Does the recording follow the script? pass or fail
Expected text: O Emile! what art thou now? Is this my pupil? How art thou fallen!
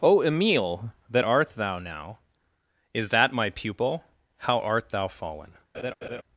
fail